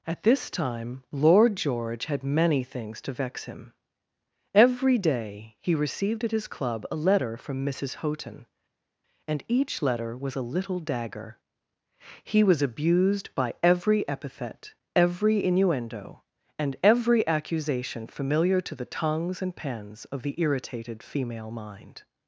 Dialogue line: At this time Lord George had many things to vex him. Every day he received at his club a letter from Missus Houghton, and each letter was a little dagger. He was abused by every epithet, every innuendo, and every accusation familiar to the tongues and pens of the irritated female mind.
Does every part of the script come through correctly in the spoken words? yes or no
yes